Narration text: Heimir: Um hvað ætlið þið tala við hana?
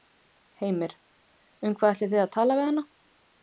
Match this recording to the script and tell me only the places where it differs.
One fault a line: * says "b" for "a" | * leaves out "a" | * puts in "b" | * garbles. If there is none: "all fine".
* puts in "að"